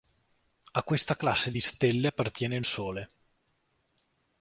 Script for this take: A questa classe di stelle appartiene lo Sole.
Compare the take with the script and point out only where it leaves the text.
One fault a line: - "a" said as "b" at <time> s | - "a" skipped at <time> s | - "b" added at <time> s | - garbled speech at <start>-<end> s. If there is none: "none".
- "lo" said as "il" at 2.6 s